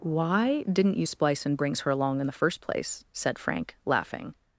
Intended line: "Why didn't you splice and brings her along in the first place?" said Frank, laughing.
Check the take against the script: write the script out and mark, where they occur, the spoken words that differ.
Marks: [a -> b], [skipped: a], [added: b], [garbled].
"Why didn't you splice and brings her along in the first place?" said Frank, laughing.